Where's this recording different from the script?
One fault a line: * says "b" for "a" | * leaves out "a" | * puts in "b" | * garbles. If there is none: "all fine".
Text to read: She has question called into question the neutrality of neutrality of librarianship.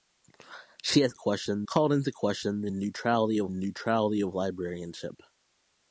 all fine